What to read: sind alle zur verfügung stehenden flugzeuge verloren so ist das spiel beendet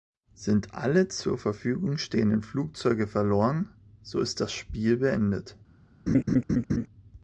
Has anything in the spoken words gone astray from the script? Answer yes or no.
no